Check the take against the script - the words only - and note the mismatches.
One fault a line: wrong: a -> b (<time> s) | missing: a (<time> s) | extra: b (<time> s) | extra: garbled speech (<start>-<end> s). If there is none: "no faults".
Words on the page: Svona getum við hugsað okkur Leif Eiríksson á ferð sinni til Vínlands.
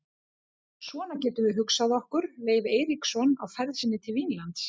no faults